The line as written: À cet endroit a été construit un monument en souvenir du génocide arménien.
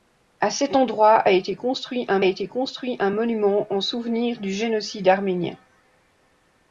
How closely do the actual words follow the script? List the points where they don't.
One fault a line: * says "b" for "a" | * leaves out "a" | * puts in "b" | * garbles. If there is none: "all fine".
* puts in "été construit un"